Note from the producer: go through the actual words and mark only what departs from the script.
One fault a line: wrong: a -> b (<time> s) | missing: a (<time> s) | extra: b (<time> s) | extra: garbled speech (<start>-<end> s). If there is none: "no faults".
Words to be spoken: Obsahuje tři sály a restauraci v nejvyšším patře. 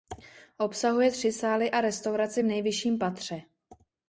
no faults